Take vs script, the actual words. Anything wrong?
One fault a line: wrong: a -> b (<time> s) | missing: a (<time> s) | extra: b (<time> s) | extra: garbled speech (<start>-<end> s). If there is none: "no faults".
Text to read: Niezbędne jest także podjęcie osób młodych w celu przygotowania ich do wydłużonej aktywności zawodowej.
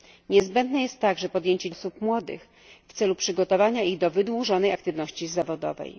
no faults